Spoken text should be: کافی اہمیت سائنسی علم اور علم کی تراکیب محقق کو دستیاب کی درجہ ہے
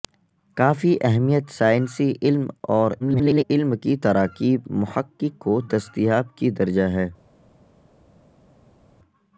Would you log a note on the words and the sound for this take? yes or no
yes